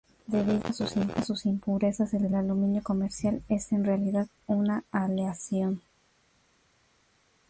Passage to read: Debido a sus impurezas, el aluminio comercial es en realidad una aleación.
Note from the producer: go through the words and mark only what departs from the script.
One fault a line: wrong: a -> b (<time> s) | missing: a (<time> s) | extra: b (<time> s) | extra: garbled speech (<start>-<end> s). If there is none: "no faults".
extra: el (2.2 s)